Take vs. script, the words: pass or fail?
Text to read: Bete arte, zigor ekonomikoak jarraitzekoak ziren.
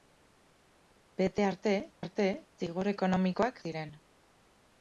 fail